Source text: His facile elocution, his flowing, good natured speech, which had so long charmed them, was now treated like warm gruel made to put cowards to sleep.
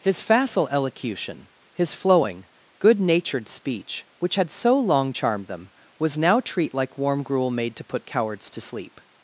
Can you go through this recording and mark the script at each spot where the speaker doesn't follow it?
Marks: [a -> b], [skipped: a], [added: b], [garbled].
His facile elocution, his flowing, good natured speech, which had so long charmed them, was now [treated -> treat] like warm gruel made to put cowards to sleep.